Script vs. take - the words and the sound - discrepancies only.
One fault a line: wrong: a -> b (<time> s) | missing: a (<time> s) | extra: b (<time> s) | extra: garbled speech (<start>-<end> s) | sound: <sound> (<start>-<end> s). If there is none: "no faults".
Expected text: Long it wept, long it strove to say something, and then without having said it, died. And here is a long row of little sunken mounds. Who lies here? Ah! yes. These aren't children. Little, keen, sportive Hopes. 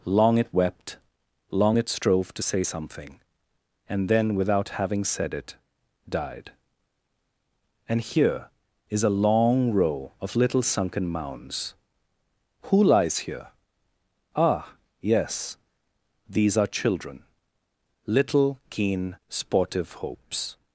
wrong: aren't -> are (16.6 s)